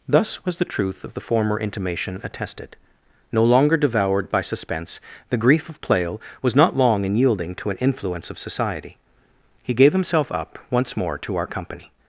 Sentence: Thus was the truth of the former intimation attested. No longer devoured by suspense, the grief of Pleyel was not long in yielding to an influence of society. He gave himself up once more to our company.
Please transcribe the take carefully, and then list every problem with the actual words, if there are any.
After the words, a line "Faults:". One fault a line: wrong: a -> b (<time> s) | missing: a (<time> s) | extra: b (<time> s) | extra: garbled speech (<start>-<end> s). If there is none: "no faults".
Thus was the truth of the former intimation attested. No longer devoured by suspense, the grief of Pleyel was not long in yielding to an influence of society. He gave himself up once more to our company.
Faults:
no faults